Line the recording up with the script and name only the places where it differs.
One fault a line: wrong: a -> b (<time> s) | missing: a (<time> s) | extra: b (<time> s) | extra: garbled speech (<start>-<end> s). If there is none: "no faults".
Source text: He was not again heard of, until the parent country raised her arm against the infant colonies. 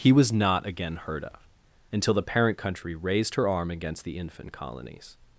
no faults